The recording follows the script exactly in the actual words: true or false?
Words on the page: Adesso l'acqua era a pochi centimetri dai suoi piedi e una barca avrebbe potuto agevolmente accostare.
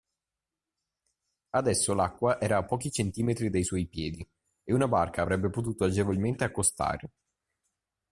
true